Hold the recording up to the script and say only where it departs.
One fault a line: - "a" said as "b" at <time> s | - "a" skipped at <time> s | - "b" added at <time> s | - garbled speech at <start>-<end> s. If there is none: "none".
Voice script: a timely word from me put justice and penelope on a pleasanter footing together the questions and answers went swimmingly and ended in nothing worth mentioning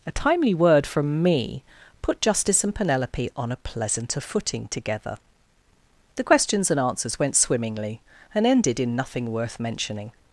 none